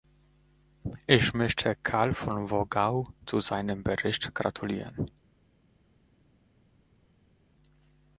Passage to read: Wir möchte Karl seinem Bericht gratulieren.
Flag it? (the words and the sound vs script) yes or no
yes